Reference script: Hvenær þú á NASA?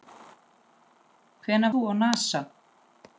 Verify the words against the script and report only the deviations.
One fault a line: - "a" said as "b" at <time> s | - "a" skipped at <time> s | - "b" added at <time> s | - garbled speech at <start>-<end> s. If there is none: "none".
none